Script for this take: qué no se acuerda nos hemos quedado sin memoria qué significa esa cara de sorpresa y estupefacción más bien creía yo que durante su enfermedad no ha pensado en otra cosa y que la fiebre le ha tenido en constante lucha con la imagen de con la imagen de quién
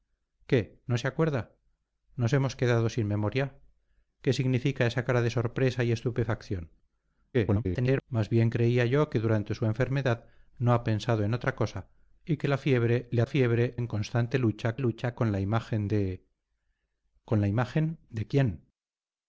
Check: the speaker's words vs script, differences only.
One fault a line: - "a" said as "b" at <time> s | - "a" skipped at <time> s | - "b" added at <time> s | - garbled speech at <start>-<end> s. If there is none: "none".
- garbled speech at 7.3-8.0 s
- "tenido" said as "fiebre" at 13.2 s
- "lucha" added at 14.8 s